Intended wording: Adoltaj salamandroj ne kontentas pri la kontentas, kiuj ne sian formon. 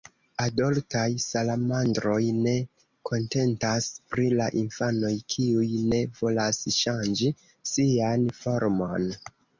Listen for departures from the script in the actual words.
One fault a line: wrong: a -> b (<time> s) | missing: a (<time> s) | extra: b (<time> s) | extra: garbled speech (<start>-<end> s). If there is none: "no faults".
wrong: kontentas -> infanoj (4.6 s)
extra: volas ŝanĝi (6.2 s)